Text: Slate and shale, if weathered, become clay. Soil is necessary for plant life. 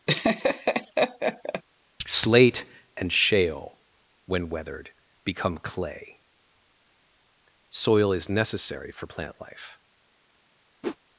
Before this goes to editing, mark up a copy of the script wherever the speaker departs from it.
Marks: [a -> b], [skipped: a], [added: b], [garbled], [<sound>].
[laugh] Slate and shale, [if -> when] weathered, become clay. Soil is necessary for plant life. [whoosh]